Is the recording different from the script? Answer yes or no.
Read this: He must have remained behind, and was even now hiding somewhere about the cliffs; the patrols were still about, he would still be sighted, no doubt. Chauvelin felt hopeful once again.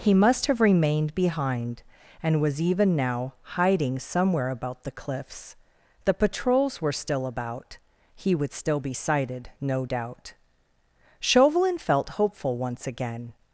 no